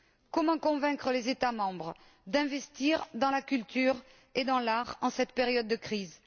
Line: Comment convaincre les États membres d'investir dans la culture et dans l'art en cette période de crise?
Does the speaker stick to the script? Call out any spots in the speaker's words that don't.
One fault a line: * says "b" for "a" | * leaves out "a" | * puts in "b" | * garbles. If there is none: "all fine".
all fine